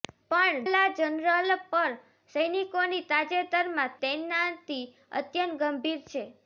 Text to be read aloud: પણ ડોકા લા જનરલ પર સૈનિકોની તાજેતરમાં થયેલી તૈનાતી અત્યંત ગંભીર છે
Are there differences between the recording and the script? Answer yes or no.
yes